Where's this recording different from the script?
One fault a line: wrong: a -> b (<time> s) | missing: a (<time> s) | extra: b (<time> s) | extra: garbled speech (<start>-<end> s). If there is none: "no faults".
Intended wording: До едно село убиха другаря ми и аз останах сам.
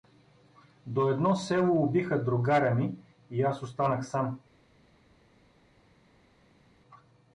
no faults